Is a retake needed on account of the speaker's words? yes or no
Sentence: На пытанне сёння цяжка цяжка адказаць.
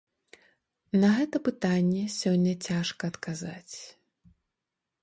yes